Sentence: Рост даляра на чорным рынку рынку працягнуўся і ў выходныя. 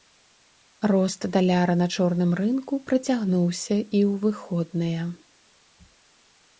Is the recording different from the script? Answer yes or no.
yes